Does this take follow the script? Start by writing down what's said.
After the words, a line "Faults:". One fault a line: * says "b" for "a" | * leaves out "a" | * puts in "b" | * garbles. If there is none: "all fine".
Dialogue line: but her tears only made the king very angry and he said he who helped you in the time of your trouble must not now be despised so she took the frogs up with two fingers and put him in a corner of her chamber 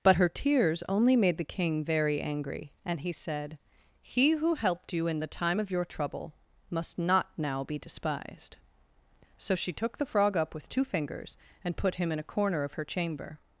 but her tears only made the king very angry and he said he who helped you in the time of your trouble must not now be despised so she took the frog up with two fingers and put him in a corner of her chamber
Faults:
* says "frog" for "frogs"